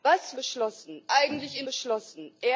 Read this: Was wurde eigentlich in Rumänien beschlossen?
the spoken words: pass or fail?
fail